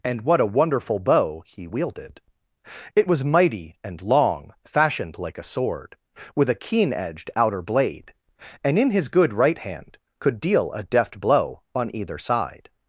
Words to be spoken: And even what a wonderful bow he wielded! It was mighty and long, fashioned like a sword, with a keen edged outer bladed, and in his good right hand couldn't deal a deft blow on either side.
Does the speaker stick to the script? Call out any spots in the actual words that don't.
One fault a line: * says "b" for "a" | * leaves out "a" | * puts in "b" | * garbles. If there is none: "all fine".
* leaves out "even"
* says "blade" for "bladed"
* says "could" for "couldn't"